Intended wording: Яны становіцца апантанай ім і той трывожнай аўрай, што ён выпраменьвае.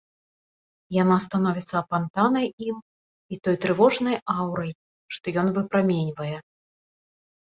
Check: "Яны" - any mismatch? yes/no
yes